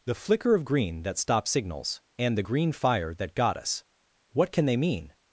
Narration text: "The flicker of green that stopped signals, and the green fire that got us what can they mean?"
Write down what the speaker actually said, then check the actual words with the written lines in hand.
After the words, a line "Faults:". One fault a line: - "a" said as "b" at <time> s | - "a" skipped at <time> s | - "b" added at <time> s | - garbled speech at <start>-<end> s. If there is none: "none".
"The flicker of green that stopped signals, and the green fire that got us what can they mean?"
Faults:
none